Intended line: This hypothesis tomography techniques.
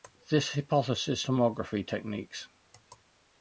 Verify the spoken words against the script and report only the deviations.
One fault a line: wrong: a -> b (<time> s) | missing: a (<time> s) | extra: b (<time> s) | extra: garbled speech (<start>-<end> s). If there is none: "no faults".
no faults